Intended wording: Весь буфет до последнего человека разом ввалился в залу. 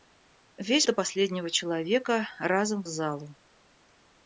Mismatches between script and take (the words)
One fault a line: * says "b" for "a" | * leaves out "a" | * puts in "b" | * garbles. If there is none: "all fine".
* leaves out "буфет"
* leaves out "ввалился"